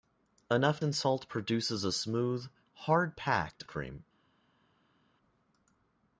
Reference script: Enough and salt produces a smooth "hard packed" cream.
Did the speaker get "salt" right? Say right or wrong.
right